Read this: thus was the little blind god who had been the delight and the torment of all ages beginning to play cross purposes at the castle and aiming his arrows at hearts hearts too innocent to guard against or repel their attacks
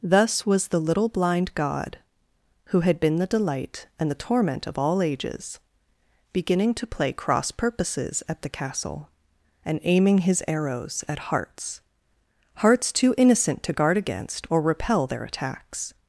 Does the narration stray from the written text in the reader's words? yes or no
no